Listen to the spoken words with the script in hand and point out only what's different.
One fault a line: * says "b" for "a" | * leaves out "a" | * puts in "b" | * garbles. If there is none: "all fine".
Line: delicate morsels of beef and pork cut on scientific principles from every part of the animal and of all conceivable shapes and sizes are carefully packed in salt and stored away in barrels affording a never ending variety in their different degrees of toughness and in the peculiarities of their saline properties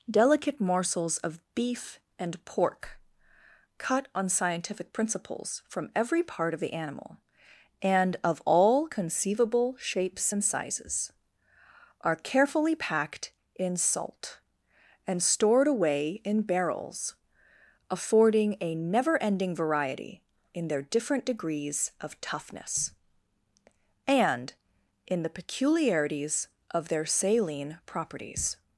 all fine